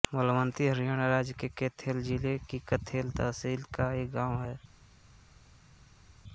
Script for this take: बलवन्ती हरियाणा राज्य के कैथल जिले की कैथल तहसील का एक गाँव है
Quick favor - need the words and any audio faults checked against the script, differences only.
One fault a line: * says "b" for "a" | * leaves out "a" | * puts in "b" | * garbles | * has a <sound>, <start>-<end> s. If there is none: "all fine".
all fine